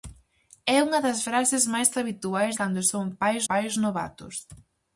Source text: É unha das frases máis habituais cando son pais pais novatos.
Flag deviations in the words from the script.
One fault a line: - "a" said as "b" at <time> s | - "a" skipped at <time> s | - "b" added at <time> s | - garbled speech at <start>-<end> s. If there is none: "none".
none